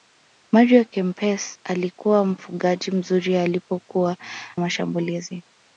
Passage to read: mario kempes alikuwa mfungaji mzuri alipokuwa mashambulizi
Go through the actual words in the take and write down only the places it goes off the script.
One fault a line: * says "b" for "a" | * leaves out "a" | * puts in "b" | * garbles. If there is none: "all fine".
all fine